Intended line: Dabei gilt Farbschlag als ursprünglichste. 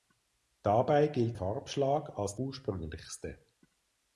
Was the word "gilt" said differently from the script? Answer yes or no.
no